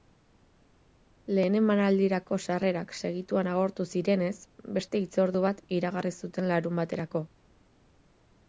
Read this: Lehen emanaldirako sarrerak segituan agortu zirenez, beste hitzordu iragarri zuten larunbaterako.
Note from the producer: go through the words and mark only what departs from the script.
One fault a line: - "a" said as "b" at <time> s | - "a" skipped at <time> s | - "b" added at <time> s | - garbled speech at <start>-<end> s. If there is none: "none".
- "bat" added at 5.5 s